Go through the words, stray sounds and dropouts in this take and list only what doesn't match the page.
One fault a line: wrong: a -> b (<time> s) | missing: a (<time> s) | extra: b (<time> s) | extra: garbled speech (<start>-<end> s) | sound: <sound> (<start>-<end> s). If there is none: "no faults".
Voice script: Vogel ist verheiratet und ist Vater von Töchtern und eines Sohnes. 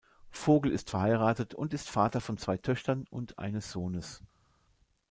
extra: zwei (2.4 s)